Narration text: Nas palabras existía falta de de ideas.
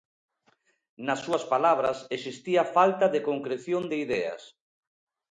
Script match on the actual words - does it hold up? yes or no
no